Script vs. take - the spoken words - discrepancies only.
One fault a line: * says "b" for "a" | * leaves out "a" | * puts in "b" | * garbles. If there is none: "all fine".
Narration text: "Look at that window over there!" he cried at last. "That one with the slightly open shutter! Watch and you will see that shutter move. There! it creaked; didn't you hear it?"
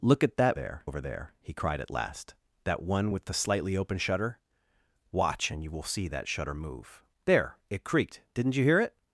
* says "there" for "window"